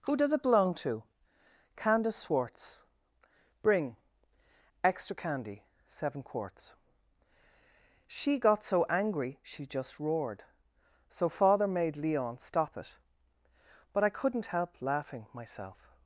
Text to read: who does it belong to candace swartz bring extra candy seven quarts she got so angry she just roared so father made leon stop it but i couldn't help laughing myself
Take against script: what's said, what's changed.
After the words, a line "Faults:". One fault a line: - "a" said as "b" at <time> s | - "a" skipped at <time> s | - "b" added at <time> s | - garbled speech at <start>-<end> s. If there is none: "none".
who does it belong to candace swartz bring extra candy seven quarts she got so angry she just roared so father made leon stop it but i couldn't help laughing myself
Faults:
none